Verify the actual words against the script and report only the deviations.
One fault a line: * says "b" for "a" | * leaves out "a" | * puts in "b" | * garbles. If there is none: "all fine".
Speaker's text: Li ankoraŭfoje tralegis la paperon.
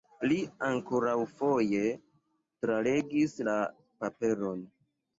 all fine